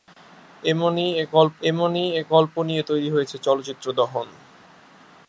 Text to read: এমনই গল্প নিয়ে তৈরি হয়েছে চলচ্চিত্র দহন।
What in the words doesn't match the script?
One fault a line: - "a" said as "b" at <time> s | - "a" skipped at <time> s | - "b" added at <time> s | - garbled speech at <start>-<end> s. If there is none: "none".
- "এমনই গল্প" added at 1.6 s